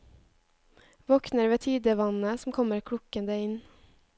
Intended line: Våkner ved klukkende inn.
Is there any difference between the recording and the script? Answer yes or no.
yes